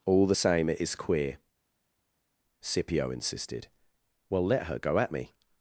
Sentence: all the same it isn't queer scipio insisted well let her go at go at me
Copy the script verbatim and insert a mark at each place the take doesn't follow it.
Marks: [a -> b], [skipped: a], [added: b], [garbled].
all the same it [isn't -> is] queer scipio insisted well let her go at [skipped: go at] me